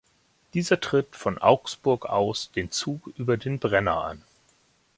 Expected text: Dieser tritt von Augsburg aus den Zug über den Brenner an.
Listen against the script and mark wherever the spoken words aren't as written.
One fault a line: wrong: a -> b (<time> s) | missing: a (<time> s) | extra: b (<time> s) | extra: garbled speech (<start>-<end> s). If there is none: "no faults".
no faults